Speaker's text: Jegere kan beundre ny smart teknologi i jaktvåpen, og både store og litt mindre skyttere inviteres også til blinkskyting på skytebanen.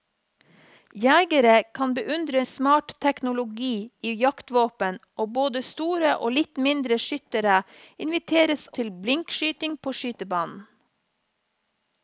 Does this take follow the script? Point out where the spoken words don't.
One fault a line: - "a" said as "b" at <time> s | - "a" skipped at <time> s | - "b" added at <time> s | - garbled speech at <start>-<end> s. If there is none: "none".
- "ny" skipped at 2.4 s
- "også" skipped at 8.7 s